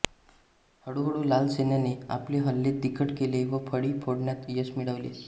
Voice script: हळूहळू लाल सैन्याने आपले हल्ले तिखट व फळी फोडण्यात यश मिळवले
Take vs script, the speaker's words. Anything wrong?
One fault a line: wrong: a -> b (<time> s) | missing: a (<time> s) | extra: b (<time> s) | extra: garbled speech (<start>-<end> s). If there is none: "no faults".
extra: केले (3.2 s)